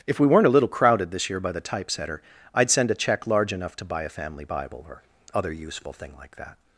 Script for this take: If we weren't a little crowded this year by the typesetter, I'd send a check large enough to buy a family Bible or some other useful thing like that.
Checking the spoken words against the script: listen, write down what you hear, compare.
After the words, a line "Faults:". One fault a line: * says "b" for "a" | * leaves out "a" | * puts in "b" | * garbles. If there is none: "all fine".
If we weren't a little crowded this year by the typesetter, I'd send a check large enough to buy a family Bible or other useful thing like that.
Faults:
* leaves out "some"